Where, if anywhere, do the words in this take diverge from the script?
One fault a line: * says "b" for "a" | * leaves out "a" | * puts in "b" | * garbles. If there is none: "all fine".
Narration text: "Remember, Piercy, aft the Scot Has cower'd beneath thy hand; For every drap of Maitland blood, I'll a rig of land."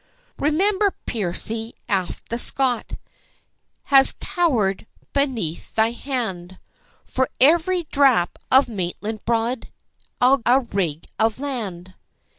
all fine